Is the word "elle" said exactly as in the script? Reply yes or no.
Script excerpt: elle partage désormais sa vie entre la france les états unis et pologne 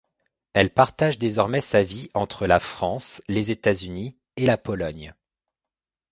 yes